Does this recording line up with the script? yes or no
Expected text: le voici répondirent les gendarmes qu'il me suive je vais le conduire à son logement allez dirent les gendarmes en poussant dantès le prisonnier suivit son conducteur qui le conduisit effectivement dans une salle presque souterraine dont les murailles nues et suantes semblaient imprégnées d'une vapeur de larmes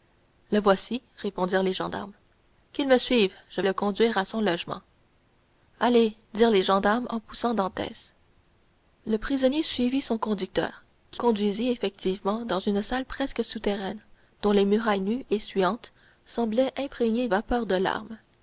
no